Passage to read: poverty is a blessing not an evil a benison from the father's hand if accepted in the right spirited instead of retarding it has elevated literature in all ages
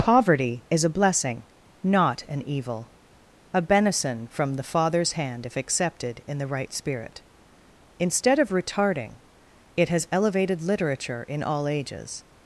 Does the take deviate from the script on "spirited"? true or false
true